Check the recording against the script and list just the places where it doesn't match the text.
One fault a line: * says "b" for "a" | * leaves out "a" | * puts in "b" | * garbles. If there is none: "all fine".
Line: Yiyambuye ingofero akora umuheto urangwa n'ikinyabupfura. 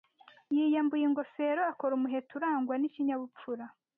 all fine